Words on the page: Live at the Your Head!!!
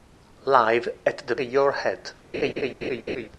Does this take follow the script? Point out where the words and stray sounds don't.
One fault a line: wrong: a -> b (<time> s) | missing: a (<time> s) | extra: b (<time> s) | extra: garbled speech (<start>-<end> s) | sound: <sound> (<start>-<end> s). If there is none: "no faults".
sound: laugh (2.3-3.3 s)